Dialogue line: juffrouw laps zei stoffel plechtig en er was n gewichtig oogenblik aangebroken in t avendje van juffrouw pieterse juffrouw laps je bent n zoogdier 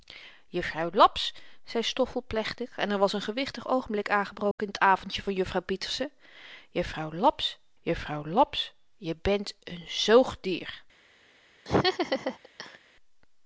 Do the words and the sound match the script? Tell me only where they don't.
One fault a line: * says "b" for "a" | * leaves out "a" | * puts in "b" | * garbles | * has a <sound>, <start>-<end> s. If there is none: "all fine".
* has a dropout, 4.5-4.6 s
* puts in "juffrouw laps"
* has a laugh, 11.7-12.8 s